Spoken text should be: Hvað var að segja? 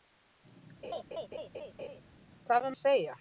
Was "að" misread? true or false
false